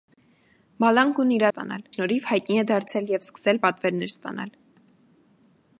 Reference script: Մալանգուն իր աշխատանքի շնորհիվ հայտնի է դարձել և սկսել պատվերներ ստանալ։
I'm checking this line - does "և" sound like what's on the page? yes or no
yes